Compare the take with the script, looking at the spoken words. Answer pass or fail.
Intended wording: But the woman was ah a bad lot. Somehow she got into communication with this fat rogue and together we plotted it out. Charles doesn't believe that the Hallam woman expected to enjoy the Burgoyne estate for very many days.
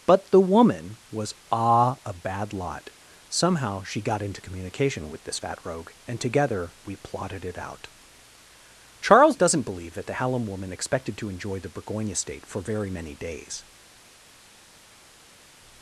pass